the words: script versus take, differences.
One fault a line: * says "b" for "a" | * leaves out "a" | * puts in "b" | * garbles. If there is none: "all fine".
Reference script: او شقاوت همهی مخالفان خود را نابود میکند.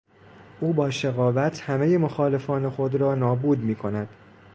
* puts in "با"